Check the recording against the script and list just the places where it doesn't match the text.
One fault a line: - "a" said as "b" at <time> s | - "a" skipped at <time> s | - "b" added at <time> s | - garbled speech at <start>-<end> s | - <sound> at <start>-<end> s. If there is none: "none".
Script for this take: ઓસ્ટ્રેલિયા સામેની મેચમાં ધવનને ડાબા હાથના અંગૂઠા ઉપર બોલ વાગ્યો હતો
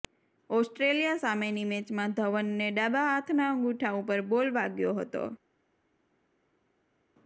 none